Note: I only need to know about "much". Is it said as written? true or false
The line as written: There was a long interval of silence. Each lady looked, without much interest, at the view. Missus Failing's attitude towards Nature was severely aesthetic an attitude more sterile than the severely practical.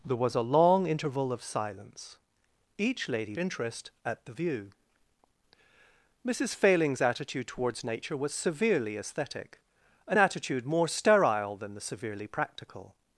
false